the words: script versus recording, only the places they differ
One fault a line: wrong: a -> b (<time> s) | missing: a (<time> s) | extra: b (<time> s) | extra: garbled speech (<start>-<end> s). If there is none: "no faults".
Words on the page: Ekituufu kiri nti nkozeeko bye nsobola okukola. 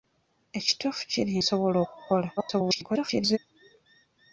missing: nti nkozeeko bye (1.3 s)
extra: garbled speech (2.4-3.4 s)